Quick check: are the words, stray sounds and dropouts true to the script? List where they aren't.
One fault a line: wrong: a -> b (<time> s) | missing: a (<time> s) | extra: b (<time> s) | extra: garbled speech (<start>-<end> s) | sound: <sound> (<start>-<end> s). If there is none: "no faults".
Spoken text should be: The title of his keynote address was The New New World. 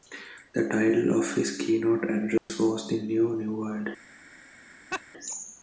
sound: dropout (2.4-2.5 s)
sound: laugh (4.9-5.0 s)